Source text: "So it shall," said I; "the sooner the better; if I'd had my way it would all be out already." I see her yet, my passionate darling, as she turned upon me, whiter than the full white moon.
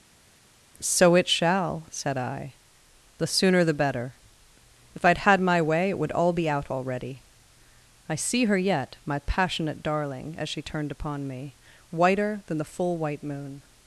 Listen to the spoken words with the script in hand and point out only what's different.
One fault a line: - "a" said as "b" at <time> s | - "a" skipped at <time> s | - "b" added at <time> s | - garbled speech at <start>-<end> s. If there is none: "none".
none